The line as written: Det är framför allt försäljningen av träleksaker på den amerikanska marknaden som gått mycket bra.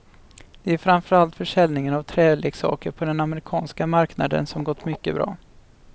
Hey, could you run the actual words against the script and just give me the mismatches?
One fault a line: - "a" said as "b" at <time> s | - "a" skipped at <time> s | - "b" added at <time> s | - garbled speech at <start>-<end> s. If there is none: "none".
none